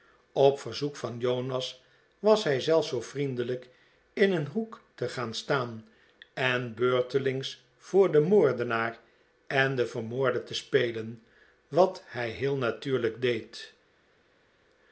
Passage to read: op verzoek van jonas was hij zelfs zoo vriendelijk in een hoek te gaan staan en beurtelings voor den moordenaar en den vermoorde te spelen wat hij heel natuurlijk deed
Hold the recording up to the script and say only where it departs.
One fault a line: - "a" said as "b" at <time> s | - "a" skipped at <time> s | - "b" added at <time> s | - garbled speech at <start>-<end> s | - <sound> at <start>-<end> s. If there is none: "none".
none